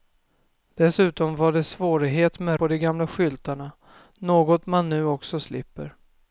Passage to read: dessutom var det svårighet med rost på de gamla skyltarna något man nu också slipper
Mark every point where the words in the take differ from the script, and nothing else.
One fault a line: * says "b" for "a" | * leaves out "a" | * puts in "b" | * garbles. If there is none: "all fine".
* leaves out "rost"